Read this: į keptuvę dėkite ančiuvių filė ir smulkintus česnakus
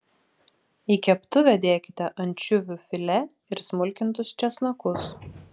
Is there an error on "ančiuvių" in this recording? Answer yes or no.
no